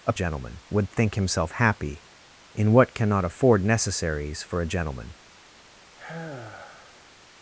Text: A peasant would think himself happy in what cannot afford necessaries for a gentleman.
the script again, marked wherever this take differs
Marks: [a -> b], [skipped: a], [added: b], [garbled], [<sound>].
A [peasant -> gentleman] would think himself happy in what cannot afford necessaries for a gentleman. [sigh]